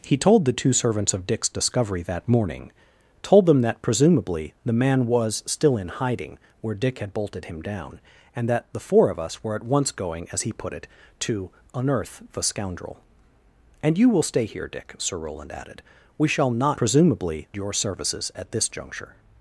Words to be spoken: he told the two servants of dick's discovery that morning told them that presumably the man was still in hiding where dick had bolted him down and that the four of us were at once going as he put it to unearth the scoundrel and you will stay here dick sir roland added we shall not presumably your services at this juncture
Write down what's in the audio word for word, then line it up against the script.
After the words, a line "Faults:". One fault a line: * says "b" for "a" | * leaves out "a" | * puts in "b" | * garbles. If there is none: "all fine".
he told the two servants of dick's discovery that morning told them that presumably the man was still in hiding where dick had bolted him down and that the four of us were at once going as he put it to unearth the scoundrel and you will stay here dick sir roland added we shall not presumably your services at this juncture
Faults:
all fine